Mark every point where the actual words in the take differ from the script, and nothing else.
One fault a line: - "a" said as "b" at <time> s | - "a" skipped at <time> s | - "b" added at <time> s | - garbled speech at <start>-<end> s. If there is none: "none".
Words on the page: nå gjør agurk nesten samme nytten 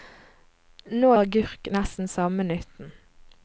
- "gjør" skipped at 1.1 s